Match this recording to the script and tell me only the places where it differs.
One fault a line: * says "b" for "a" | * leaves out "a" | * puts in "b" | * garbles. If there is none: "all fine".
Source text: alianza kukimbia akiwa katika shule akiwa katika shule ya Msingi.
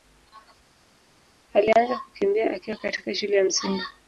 * leaves out "akiwa katika shule"